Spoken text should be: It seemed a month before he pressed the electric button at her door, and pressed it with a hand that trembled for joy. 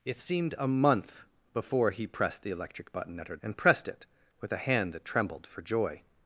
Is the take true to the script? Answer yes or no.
no